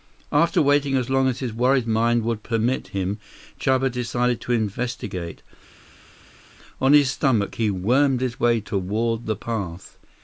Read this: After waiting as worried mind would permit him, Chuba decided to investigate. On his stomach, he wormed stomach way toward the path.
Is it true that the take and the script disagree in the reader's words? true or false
true